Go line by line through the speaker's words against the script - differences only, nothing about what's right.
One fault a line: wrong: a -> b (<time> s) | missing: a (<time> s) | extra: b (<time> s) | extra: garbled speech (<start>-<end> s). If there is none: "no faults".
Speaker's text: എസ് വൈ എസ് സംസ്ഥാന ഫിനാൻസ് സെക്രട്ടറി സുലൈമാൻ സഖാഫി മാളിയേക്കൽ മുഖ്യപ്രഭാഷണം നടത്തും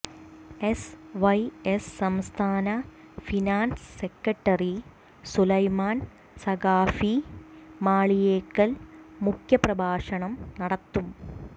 no faults